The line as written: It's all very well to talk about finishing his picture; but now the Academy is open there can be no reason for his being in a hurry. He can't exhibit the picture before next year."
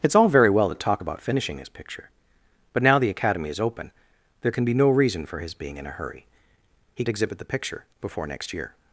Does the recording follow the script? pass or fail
fail